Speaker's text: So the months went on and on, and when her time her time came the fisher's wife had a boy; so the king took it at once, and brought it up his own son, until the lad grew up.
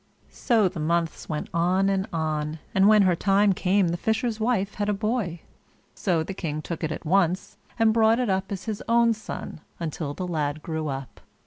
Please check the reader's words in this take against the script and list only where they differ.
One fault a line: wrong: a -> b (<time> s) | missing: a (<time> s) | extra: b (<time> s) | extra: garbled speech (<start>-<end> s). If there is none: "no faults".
missing: her time (3.5 s)
extra: as (8.5 s)